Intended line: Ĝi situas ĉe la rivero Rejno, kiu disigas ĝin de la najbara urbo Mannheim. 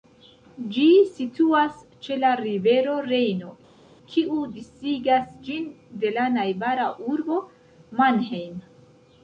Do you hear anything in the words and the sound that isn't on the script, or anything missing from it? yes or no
no